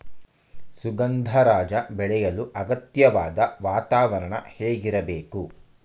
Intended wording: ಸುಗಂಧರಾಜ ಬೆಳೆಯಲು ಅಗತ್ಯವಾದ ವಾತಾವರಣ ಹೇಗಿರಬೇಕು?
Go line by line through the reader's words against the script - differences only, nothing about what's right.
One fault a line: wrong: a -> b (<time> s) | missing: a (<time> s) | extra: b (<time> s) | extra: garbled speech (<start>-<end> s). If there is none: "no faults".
no faults